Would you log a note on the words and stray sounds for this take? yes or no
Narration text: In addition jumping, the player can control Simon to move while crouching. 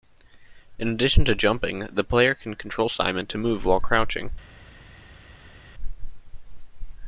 yes